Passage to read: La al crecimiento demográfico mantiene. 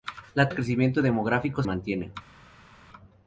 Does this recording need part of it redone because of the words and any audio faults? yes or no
no